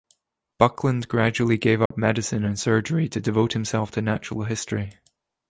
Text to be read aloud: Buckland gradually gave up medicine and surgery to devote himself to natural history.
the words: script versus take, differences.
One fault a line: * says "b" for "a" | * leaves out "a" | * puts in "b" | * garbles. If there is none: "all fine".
all fine